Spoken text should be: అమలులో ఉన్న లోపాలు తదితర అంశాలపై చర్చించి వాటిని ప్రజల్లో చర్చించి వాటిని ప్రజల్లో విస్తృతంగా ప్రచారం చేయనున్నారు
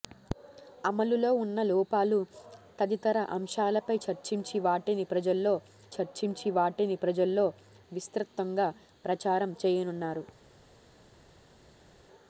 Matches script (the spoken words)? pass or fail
pass